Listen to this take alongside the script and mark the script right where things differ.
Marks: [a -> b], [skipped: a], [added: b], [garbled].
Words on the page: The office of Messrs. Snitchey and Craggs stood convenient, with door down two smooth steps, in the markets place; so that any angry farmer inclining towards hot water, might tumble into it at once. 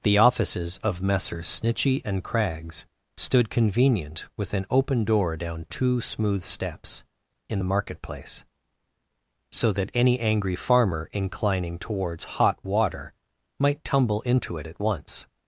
The [office -> offices] of Messrs. Snitchey and Craggs stood convenient, with [added: an open] door down two smooth steps, in the [markets -> market] place; so that any angry farmer inclining towards hot water, might tumble into it at once.